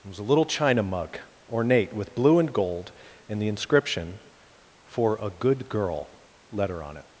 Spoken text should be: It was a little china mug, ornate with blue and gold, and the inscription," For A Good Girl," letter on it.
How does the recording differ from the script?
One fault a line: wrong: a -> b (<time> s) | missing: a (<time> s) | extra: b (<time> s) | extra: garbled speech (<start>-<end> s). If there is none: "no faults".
no faults